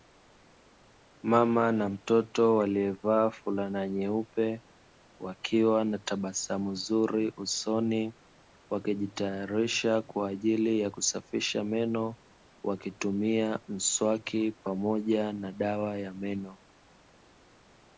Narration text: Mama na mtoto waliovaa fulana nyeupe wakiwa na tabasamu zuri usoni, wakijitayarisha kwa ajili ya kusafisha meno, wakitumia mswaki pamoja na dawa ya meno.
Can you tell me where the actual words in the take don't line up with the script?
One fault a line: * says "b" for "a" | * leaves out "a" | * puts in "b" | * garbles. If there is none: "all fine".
all fine